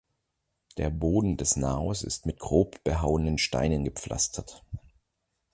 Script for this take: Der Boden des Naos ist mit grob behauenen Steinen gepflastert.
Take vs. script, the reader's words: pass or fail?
pass